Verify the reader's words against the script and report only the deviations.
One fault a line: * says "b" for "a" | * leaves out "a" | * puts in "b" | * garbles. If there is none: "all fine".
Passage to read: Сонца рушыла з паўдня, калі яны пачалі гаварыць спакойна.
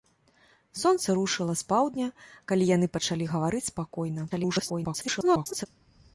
* garbles